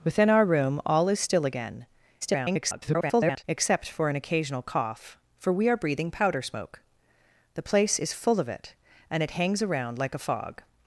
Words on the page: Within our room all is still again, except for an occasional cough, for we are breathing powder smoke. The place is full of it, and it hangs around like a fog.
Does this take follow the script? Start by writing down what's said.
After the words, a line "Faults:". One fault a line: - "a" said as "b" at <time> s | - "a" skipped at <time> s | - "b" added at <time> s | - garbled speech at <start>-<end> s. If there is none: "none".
Within our room all is still again, [garbled] except for an occasional cough, for we are breathing powder smoke. The place is full of it, and it hangs around like a fog.
Faults:
- garbled speech at 2.2-3.4 s